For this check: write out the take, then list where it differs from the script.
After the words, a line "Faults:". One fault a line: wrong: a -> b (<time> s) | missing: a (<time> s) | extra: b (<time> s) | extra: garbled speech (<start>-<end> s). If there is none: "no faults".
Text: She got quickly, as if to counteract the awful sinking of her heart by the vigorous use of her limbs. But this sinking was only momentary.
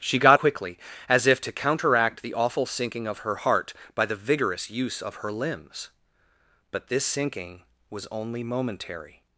She got quickly, as if to counteract the awful sinking of her heart by the vigorous use of her limbs. But this sinking was only momentary.
Faults:
no faults